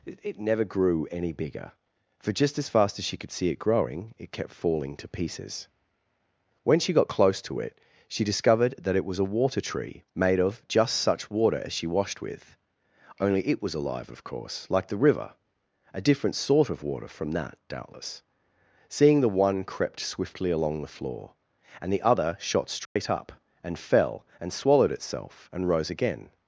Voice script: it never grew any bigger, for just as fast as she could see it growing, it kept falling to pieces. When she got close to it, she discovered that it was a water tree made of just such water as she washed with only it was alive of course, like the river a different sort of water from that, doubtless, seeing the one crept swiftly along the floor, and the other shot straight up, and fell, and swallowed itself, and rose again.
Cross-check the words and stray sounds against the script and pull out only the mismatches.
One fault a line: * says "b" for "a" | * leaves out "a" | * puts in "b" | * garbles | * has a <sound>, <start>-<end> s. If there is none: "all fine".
* has a dropout, 22.9-23.0 s